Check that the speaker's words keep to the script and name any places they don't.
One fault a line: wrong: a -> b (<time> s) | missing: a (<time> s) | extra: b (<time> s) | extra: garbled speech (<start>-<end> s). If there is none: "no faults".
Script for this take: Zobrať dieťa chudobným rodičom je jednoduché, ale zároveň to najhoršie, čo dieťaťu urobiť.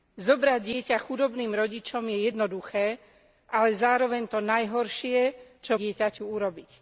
no faults